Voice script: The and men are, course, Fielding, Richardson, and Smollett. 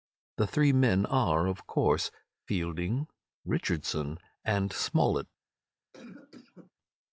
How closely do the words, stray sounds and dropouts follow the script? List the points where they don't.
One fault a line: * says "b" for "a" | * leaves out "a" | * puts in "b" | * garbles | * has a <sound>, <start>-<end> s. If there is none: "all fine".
* says "three" for "and"
* puts in "of"
* has a cough, 5.9-6.7 s